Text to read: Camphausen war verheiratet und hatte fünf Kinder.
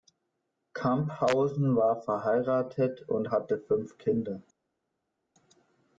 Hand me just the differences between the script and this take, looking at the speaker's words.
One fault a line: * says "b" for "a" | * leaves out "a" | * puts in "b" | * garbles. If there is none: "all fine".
all fine